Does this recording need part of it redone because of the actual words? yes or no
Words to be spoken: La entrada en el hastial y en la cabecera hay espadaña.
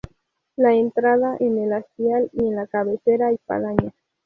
no